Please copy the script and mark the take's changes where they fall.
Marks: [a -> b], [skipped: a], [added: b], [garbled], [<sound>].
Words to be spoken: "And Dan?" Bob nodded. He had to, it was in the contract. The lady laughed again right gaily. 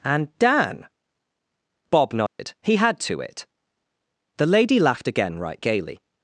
"And Dan?" Bob nodded. [dropout] He had to, it [skipped: was in the contract.] The lady laughed again right gaily.